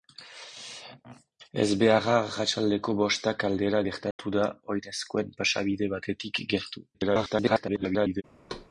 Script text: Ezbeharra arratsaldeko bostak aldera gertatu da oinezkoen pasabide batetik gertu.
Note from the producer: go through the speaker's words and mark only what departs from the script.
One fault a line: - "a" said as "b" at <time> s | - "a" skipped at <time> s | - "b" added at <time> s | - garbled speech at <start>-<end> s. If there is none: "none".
- garbled speech at 6.9-8.2 s